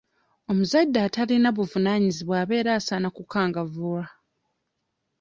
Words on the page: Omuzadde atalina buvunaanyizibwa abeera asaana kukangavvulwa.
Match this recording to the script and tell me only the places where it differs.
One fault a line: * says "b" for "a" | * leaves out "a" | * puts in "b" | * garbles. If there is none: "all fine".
all fine